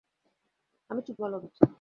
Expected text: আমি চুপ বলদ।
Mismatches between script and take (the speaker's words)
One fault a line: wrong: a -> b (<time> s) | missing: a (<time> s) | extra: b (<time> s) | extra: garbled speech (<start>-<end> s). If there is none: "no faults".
no faults